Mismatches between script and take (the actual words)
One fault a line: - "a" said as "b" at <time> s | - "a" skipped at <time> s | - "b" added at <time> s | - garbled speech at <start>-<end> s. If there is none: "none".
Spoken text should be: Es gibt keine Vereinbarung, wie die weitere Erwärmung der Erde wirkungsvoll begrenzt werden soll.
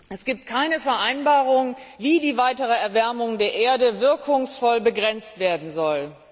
none